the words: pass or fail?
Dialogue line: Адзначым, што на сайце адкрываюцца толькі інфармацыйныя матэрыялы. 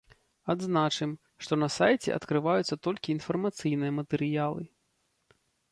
pass